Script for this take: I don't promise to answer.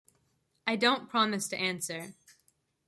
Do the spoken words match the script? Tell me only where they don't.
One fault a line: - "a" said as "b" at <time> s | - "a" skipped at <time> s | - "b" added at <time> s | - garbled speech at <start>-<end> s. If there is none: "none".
none